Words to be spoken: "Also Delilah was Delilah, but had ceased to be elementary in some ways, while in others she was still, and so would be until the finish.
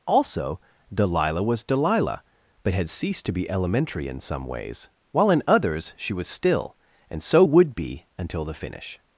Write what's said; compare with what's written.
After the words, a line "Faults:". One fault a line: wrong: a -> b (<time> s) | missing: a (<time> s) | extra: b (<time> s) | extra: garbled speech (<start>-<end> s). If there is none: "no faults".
"Also Delilah was Delilah, but had ceased to be elementary in some ways, while in others she was still, and so would be until the finish.
Faults:
no faults